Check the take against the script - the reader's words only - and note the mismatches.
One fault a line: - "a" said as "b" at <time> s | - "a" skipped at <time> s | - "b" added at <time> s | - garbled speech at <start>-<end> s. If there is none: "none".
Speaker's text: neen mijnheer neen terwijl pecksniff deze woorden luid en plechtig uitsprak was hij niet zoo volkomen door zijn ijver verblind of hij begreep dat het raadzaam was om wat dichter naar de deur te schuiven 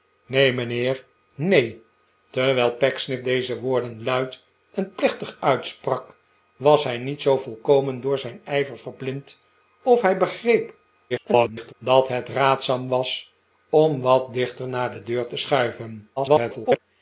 - garbled speech at 11.1-11.7 s
- garbled speech at 16.2-16.8 s